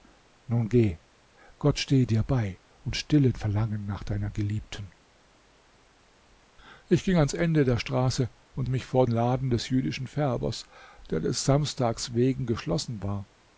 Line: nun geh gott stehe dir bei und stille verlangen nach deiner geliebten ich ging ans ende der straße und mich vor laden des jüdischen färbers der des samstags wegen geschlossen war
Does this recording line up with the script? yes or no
yes